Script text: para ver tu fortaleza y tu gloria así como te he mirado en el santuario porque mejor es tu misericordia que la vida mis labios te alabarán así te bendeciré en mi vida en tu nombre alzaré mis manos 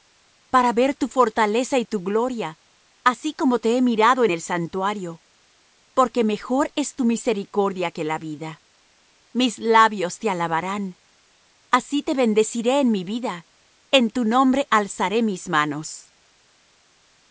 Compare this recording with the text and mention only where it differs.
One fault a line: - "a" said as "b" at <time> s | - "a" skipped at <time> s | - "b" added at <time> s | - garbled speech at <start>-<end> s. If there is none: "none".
none